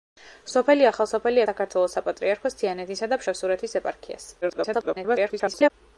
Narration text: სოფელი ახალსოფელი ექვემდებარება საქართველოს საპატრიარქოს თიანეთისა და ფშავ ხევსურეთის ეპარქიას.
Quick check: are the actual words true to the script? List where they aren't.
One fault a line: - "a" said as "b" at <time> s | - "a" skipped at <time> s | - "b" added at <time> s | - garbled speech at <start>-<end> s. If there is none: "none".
- "ექვემდებარება" skipped at 1.4 s
- "ფშავ" skipped at 3.2 s
- garbled speech at 4.4-5.7 s